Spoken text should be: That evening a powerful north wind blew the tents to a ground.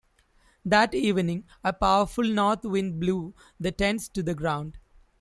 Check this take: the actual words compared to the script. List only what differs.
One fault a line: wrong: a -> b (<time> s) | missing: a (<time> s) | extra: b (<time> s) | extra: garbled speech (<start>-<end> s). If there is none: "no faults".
wrong: a -> the (4.2 s)